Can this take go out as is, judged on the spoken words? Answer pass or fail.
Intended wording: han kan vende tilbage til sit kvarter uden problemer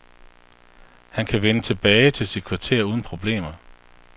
pass